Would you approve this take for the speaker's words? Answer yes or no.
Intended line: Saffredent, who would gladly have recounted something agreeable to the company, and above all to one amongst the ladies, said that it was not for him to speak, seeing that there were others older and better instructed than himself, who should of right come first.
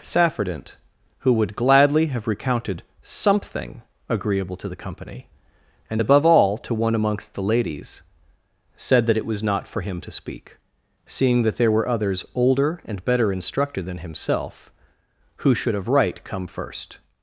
yes